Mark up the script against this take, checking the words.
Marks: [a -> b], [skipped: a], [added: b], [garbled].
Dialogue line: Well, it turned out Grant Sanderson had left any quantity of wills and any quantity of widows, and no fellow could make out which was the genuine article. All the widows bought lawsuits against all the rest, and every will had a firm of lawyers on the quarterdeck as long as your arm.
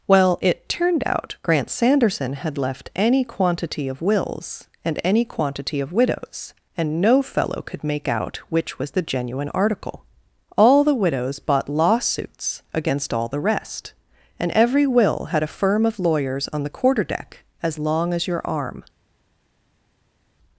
Well, it turned out Grant Sanderson had left any quantity of wills and any quantity of widows, and no fellow could make out which was the genuine article. All the widows bought lawsuits against all the rest, and every will had a firm of lawyers on the quarterdeck as long as your arm.